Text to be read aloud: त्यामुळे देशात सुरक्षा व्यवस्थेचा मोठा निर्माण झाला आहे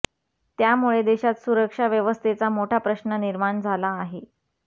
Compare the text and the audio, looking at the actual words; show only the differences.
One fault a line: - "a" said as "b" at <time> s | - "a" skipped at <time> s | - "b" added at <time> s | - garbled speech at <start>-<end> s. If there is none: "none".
- "प्रश्न" added at 2.8 s